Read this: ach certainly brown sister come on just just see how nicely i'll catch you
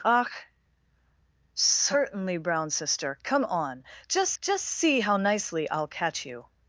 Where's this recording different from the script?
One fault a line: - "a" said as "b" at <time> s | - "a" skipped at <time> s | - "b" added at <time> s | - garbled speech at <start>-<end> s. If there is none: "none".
none